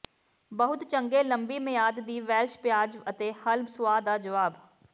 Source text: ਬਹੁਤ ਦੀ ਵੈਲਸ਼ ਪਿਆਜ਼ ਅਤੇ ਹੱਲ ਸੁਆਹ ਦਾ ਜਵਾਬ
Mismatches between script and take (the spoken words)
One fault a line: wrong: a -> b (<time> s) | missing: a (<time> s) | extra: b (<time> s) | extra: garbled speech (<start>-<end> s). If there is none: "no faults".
extra: ਚੰਗੇ ਲੰਬੀ ਮਿਆਦ (0.8 s)